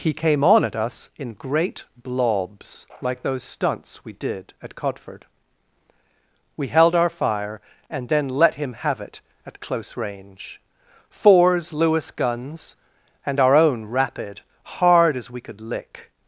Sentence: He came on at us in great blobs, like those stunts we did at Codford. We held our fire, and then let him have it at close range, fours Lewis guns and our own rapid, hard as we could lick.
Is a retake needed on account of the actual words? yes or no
no